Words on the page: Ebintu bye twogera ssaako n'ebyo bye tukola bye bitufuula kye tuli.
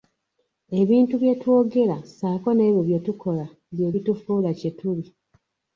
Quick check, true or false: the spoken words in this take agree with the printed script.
true